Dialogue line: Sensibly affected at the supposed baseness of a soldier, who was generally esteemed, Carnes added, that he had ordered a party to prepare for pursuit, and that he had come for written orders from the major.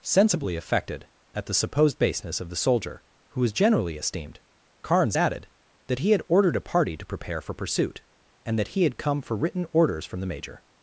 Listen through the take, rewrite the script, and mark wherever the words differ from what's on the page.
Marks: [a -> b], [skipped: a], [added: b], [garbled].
Sensibly affected at the supposed baseness of [a -> the] soldier, who was generally esteemed, Carnes added, that he had ordered a party to prepare for pursuit, and that he had come for written orders from the major.